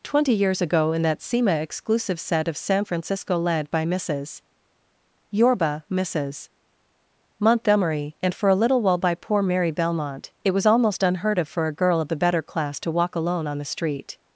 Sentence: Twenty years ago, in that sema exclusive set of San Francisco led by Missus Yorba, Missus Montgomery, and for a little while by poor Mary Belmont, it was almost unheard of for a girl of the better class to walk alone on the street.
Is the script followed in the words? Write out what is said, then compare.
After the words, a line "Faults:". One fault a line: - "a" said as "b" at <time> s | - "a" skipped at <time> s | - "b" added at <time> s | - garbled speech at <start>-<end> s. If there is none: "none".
Twenty years ago, in that sema exclusive set of San Francisco led by Missus Yorba, Missus Montgomery, and for a little while by poor Mary Belmont, it was almost unheard of for a girl of the better class to walk alone on the street.
Faults:
none